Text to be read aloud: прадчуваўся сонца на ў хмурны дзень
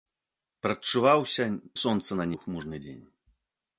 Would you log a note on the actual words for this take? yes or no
no